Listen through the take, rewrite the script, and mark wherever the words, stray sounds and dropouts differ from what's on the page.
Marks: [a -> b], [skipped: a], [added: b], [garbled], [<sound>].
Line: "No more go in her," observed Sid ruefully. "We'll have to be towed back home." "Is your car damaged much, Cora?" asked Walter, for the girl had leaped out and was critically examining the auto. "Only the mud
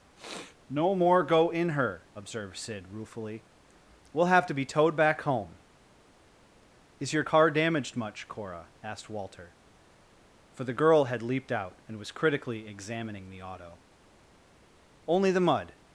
[sniff] "No more go in her," observed Sid ruefully. "We'll have to be towed back home." "Is your car damaged much, Cora?" asked Walter, for the girl had leaped out and was critically examining the auto. "Only the mud